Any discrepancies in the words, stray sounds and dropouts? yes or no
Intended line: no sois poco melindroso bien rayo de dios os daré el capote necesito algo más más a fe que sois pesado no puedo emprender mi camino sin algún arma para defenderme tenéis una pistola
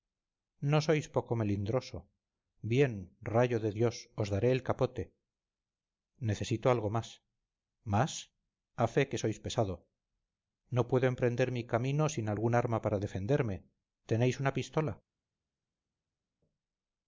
no